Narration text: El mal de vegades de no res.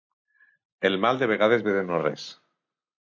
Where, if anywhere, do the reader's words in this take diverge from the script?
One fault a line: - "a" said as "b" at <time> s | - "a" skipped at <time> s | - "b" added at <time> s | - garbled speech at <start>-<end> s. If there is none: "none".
- "ve" added at 1.7 s